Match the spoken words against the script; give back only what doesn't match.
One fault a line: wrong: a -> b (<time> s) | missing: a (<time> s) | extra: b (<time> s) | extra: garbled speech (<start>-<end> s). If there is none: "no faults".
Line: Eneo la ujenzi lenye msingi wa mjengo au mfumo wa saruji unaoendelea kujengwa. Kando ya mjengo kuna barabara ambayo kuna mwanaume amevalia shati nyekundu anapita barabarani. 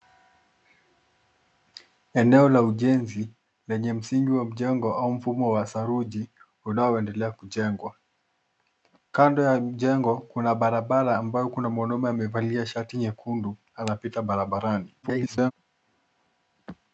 extra: garbled speech (15.0-15.5 s)